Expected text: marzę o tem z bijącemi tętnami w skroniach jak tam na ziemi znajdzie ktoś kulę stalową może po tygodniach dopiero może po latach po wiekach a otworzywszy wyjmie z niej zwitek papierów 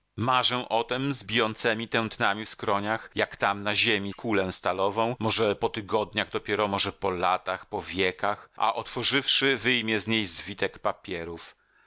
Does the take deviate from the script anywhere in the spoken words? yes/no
yes